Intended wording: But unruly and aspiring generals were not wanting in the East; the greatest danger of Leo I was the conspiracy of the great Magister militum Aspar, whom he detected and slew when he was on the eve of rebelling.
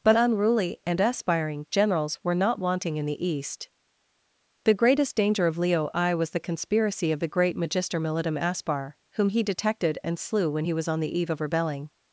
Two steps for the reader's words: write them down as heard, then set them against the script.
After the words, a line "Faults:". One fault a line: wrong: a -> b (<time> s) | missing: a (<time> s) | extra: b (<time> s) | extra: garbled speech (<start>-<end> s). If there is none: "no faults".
But unruly and aspiring generals were not wanting in the East; the greatest danger of Leo I was the conspiracy of the great Magister militum Aspar, whom he detected and slew when he was on the eve of rebelling.
Faults:
no faults